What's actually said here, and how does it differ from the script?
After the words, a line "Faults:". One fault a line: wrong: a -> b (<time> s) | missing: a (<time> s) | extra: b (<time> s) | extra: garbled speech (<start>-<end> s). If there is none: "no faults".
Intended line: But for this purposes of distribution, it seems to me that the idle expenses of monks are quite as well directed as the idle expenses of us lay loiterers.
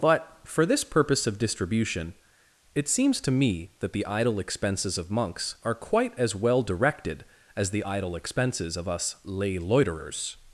But for this purpose of distribution, it seems to me that the idle expenses of monks are quite as well directed as the idle expenses of us lay loiterers.
Faults:
wrong: purposes -> purpose (0.8 s)